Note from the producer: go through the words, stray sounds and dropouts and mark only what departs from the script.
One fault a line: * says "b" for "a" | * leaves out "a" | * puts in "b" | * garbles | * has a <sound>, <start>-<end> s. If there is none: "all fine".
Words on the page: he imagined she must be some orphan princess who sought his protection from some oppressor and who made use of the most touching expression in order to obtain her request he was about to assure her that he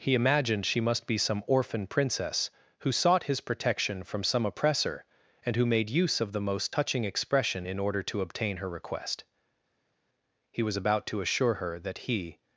all fine